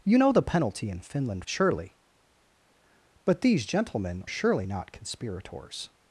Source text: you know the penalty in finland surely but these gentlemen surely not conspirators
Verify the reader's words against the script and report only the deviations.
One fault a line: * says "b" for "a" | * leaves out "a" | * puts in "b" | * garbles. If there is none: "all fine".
all fine